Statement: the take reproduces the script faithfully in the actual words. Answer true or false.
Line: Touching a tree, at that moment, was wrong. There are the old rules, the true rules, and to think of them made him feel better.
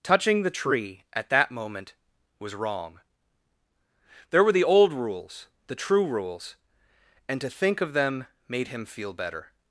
false